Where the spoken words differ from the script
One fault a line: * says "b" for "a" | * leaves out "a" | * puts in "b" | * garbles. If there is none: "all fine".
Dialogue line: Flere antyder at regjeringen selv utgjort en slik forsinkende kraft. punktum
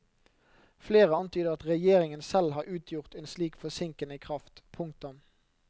* puts in "har"